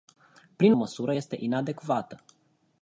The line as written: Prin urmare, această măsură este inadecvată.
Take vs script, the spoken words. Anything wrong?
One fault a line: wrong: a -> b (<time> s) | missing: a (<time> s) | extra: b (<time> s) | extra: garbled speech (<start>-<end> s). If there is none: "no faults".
missing: urmare această (0.7 s)